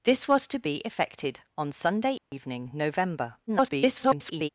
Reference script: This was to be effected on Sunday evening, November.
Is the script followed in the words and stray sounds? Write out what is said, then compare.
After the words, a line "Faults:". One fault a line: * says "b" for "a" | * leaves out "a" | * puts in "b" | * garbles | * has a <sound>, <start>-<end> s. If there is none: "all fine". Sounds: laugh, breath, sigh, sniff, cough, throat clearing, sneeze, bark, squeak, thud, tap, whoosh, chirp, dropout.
This was to be effected on Sunday evening, November. [garbled]
Faults:
* has a dropout, 2.2-2.3 s
* garbles